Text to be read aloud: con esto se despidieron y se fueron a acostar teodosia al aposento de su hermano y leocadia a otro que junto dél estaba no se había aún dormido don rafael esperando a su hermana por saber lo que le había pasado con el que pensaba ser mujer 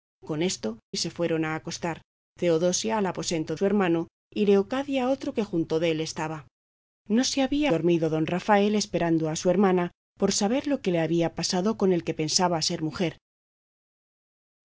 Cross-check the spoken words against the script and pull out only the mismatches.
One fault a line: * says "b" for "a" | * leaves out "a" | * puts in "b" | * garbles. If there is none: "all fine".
* leaves out "se despidieron"
* leaves out "de"
* leaves out "aún"